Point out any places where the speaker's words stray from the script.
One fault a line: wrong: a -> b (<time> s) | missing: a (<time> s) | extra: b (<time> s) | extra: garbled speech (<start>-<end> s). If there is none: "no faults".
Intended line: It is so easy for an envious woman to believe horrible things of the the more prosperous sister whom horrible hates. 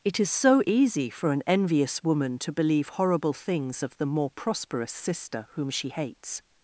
missing: the (4.1 s)
wrong: horrible -> she (5.7 s)